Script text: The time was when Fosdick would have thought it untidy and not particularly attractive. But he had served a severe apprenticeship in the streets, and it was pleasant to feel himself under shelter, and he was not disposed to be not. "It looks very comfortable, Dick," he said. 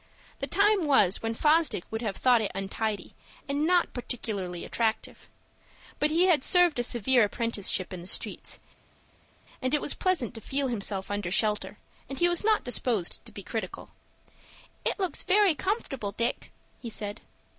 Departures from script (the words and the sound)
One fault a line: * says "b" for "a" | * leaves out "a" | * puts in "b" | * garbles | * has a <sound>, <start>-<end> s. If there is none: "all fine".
* says "critical" for "not"